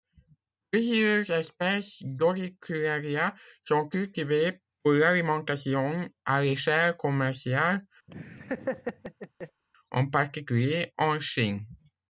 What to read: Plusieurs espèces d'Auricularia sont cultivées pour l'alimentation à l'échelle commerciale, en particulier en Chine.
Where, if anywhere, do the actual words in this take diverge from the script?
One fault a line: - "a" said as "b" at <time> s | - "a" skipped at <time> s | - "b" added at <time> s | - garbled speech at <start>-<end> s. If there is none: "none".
none